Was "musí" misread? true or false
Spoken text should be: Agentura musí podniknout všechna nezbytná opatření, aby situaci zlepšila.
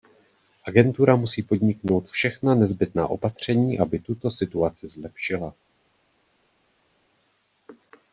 false